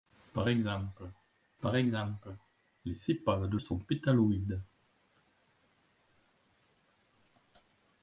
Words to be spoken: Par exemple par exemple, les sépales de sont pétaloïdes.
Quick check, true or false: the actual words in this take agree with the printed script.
true